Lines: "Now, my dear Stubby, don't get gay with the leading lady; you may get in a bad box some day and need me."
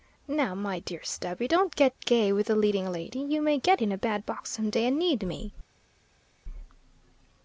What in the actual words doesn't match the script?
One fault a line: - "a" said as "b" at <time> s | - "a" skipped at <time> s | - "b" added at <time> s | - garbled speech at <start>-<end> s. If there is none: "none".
none